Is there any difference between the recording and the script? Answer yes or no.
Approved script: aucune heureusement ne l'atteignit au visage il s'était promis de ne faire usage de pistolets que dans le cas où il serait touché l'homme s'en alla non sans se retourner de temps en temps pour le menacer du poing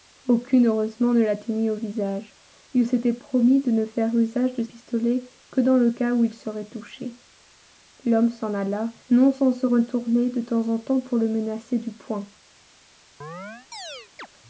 no